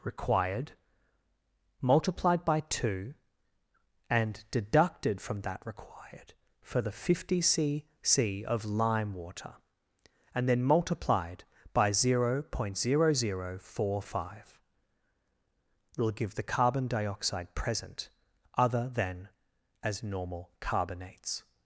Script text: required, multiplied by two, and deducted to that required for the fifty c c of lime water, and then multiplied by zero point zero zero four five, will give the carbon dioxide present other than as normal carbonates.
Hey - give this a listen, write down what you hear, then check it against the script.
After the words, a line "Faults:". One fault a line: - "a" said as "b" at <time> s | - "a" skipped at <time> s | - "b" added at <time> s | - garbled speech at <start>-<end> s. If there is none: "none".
required, multiplied by two, and deducted from that required for the fifty c c of lime water, and then multiplied by zero point zero zero four five, will give the carbon dioxide present other than as normal carbonates.
Faults:
- "to" said as "from" at 5.2 s